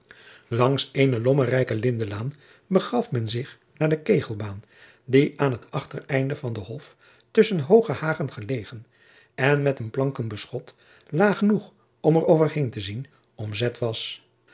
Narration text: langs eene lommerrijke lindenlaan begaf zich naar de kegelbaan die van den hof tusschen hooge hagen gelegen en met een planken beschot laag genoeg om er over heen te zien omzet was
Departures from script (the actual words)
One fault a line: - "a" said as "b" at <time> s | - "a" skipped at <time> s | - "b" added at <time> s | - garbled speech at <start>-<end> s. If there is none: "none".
- "men" added at 3.1 s
- "aan het achtereinde" added at 5.4 s